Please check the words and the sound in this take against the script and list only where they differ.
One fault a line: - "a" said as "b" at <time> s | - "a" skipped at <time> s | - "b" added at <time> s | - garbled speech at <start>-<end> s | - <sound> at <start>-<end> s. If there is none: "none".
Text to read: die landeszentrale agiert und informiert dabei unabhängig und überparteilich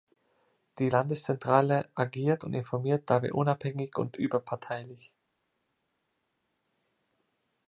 none